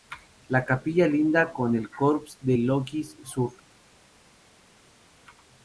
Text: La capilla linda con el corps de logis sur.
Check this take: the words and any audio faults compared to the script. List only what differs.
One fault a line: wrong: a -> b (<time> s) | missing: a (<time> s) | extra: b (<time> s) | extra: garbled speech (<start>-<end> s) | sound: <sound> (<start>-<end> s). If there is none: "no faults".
no faults